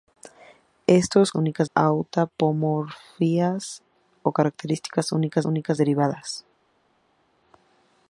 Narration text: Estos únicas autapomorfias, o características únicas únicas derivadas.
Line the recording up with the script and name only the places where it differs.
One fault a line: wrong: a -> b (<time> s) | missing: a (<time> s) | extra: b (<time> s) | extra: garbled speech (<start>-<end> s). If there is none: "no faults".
no faults